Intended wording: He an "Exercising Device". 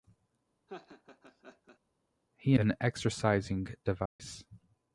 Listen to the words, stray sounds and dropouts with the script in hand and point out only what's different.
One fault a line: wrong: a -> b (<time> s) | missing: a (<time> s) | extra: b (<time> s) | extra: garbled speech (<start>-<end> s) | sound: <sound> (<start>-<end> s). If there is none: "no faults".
sound: laugh (0.7-1.8 s)
sound: dropout (4.1-4.2 s)